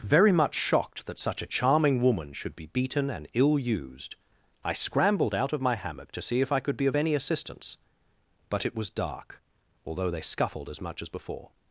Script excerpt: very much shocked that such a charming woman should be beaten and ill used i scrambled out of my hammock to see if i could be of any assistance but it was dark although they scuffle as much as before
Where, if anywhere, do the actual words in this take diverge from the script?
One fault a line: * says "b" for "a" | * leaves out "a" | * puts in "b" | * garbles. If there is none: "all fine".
* says "scuffled" for "scuffle"